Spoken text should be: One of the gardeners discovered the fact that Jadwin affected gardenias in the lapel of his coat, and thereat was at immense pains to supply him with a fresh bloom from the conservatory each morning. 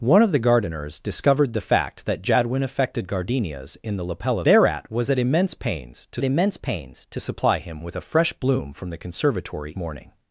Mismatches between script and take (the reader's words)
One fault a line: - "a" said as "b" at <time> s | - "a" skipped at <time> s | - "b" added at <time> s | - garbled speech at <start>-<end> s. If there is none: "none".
- "his coat and" skipped at 4.5 s
- "immense pains to" added at 6.2 s
- "each" skipped at 9.7 s